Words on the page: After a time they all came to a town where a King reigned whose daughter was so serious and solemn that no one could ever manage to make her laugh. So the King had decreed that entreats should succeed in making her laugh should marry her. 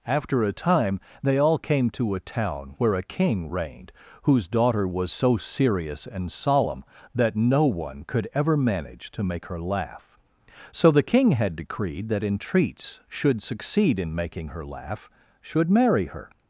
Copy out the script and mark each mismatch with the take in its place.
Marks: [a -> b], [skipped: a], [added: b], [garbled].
After a time they all came to a town where a King reigned whose daughter was so serious and solemn that no one could ever manage to make her laugh. So the King had decreed that entreats should succeed in making her laugh should marry her.